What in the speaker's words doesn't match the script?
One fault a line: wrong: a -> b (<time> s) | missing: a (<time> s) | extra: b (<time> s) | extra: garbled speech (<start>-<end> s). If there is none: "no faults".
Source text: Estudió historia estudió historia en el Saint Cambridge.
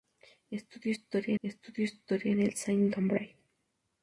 no faults